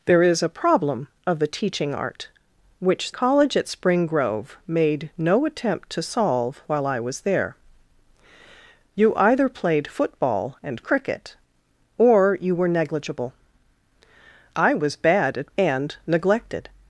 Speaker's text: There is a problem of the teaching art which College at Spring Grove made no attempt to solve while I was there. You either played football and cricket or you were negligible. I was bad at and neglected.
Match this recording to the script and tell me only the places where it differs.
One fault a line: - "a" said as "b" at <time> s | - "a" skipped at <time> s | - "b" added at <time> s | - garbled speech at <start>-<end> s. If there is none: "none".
none